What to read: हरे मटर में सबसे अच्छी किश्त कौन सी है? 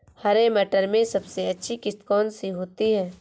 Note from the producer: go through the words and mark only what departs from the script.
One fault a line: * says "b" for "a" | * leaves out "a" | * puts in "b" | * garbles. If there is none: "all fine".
* puts in "होती"